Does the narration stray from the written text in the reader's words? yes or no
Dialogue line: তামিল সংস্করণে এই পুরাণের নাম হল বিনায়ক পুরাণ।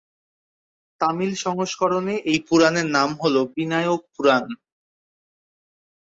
no